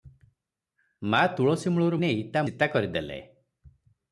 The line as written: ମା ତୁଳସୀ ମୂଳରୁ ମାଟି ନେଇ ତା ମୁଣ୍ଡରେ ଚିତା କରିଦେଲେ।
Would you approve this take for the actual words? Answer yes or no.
no